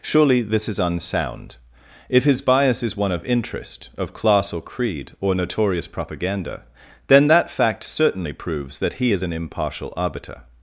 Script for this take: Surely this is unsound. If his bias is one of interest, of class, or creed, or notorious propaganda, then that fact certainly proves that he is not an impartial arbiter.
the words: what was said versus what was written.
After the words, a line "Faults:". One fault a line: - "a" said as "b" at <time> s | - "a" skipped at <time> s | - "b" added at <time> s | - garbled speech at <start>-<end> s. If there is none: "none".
Surely this is unsound. If his bias is one of interest, of class, or creed, or notorious propaganda, then that fact certainly proves that he is an impartial arbiter.
Faults:
- "not" skipped at 9.2 s